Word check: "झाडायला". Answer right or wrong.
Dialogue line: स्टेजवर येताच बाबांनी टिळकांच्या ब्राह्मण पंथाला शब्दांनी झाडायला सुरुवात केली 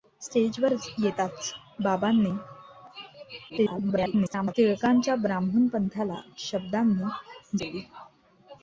wrong